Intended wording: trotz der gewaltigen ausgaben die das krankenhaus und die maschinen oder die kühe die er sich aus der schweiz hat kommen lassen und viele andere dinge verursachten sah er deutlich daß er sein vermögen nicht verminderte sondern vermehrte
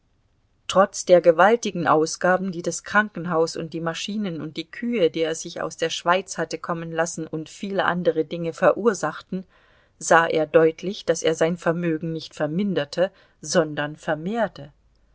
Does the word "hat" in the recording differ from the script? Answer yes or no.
yes